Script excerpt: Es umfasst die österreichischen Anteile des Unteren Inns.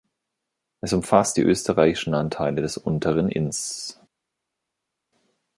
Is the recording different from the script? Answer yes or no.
no